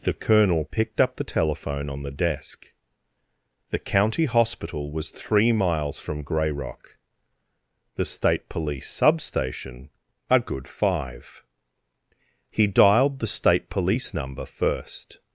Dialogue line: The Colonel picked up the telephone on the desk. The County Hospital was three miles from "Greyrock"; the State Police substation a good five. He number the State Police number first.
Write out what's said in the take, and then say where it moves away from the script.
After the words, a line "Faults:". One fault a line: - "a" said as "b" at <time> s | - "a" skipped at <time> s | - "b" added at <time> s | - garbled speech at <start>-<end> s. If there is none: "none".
The Colonel picked up the telephone on the desk. The County Hospital was three miles from "Greyrock"; the State Police substation a good five. He dialed the State Police number first.
Faults:
- "number" said as "dialed" at 12.7 s